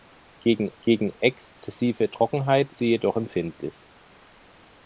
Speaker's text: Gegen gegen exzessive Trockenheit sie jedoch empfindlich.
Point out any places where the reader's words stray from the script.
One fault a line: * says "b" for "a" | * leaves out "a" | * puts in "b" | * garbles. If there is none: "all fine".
all fine